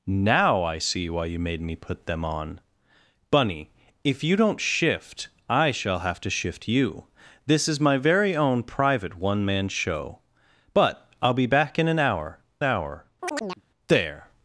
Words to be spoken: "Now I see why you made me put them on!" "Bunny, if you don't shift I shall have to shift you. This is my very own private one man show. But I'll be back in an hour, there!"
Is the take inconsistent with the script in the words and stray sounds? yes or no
yes